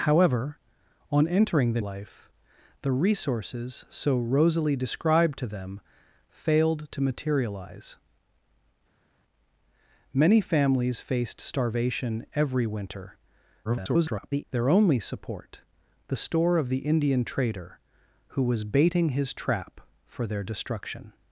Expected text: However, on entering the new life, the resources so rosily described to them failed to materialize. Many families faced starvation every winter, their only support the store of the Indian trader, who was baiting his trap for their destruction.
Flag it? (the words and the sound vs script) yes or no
yes